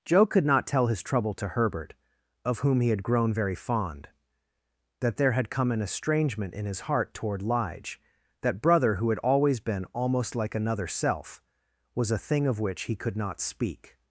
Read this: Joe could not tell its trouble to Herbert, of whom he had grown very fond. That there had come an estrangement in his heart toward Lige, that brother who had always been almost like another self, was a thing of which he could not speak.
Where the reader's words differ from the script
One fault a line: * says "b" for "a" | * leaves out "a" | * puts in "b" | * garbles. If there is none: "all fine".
* says "his" for "its"